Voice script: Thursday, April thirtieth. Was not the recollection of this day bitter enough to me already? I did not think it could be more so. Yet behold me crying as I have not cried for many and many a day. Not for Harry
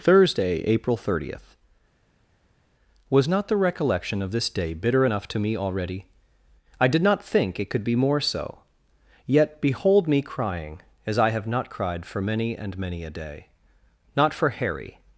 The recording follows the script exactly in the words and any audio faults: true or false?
true